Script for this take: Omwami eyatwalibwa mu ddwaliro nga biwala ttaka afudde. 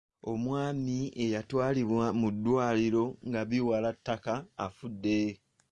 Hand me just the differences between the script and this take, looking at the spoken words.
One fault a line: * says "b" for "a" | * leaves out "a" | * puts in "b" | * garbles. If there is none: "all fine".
all fine